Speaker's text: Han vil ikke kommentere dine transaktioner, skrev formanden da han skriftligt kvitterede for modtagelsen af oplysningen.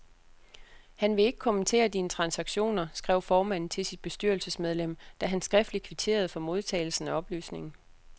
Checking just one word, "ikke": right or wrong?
right